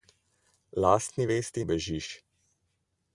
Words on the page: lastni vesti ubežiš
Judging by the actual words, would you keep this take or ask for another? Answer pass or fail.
pass